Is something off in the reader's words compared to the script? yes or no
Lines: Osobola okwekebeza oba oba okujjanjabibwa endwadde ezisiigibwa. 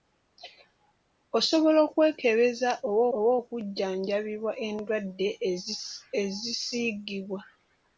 no